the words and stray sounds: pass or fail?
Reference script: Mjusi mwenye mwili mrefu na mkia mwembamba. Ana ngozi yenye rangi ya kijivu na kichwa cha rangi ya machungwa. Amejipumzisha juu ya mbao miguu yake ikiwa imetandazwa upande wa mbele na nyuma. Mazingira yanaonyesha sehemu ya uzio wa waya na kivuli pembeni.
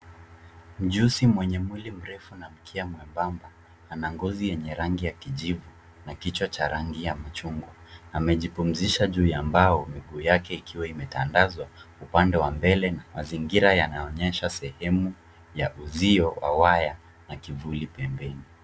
fail